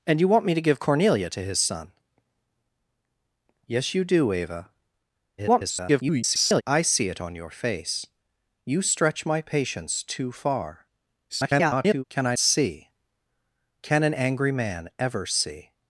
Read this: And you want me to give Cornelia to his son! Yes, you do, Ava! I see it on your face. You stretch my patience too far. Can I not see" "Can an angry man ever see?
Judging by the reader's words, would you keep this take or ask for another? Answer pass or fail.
fail